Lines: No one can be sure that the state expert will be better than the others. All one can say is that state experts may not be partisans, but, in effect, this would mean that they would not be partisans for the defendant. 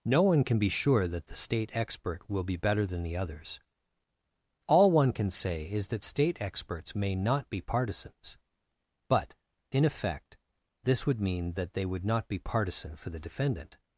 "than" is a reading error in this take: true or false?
false